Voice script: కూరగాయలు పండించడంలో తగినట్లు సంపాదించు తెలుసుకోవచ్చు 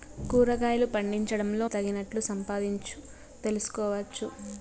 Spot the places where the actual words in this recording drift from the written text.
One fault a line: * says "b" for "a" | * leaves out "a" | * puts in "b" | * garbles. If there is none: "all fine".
all fine